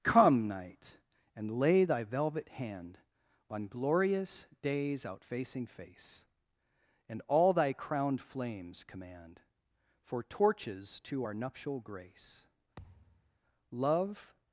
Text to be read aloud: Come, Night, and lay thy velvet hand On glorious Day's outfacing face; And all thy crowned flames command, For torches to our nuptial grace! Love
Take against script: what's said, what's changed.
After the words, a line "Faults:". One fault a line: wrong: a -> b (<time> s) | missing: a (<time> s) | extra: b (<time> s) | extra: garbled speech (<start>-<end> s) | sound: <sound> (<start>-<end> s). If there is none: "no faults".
Come, Night, and lay thy velvet hand On glorious Day's outfacing face; And all thy crowned flames command, For torches to our nuptial grace! Love
Faults:
sound: thud (12.8-13.4 s)